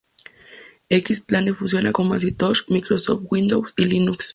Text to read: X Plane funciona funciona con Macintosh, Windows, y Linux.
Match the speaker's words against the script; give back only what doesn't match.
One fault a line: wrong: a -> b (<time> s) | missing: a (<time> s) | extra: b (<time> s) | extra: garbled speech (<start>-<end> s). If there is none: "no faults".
missing: funciona (1.9 s)
extra: Microsoft (2.7 s)